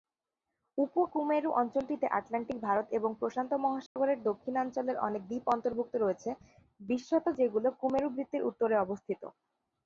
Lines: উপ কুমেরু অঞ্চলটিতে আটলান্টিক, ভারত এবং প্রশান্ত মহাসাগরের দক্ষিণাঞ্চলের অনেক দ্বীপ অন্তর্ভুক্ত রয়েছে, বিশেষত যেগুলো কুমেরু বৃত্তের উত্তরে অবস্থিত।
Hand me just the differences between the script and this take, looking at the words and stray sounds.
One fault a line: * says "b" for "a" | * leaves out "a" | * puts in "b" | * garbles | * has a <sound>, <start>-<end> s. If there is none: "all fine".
* has a dropout, 3.9-4.0 s